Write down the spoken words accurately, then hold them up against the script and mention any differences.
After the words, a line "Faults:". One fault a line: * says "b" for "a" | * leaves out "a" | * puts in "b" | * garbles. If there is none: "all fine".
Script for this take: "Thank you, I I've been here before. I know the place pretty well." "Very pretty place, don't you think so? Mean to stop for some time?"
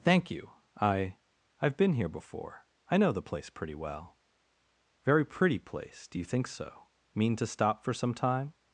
"Thank you, I I've been here before. I know the place pretty well." "Very pretty place, do you think so? Mean to stop for some time?"
Faults:
* says "do" for "don't"